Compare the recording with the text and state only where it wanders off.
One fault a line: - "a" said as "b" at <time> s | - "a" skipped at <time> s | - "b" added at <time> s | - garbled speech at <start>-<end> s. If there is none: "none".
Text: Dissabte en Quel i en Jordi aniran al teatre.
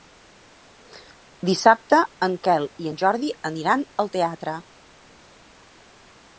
none